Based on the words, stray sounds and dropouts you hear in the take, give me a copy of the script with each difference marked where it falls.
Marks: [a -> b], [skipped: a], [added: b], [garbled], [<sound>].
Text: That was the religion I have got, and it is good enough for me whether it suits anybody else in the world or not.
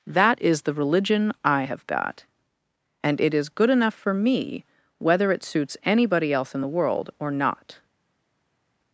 That [was -> is] the religion I have got, and it is good enough for me whether it suits anybody else in the world or not.